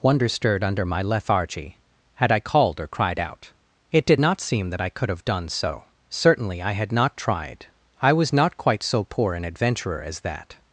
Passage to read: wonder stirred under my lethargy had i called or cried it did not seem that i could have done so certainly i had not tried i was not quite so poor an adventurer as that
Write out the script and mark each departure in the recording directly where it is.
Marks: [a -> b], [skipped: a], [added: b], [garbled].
wonder stirred under my lethargy had i called or cried [added: out] it did not seem that i could have done so certainly i had not tried i was not quite so poor an adventurer as that